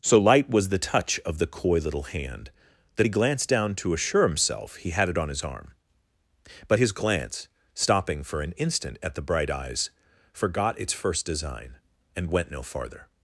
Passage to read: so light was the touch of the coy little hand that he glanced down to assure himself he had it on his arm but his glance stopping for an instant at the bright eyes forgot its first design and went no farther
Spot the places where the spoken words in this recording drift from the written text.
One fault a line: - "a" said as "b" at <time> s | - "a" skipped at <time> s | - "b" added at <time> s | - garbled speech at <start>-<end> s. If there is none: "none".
none